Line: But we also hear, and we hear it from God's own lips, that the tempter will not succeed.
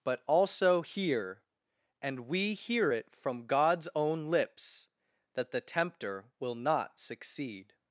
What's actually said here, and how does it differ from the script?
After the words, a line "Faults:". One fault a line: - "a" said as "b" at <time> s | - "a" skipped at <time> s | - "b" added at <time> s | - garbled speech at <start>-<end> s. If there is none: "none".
But also hear, and we hear it from God's own lips, that the tempter will not succeed.
Faults:
- "we" skipped at 0.2 s